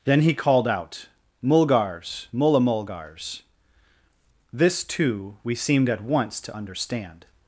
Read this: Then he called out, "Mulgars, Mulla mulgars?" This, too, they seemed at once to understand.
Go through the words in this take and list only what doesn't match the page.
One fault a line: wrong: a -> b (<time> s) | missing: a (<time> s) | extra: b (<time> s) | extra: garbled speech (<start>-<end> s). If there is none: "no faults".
wrong: they -> we (5.4 s)